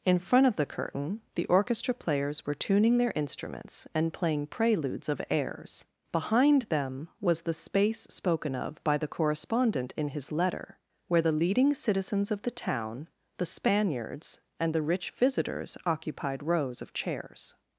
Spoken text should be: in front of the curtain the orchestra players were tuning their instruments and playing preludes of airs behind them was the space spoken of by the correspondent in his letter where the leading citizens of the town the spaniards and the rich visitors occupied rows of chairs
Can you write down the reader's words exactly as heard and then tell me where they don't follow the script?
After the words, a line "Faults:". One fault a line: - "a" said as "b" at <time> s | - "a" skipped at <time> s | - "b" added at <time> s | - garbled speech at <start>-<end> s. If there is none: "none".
in front of the curtain the orchestra players were tuning their instruments and playing preludes of airs behind them was the space spoken of by the correspondent in his letter where the leading citizens of the town the spaniards and the rich visitors occupied rows of chairs
Faults:
none